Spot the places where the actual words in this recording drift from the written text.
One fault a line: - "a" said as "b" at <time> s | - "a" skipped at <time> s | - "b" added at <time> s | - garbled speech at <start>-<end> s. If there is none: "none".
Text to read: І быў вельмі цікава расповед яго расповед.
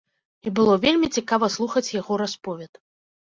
- "быў" said as "было" at 0.6 s
- "расповед" said as "слухаць" at 1.5 s